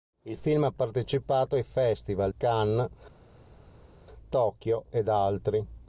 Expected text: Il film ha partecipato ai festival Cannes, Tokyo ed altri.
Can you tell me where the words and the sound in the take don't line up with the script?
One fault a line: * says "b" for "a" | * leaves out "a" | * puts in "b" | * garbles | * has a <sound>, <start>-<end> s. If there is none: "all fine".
all fine